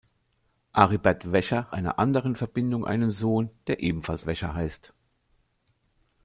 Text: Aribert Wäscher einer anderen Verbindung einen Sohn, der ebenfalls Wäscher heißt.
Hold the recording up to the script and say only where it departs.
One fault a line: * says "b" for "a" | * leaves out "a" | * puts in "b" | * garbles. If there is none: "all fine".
all fine